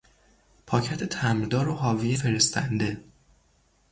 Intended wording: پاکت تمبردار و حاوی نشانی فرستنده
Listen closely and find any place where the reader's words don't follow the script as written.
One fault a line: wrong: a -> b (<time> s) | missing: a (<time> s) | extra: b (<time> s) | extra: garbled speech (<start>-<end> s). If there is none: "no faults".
missing: نشانی (2.2 s)